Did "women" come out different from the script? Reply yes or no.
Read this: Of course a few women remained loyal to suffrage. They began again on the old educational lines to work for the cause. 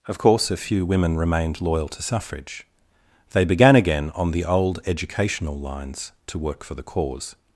no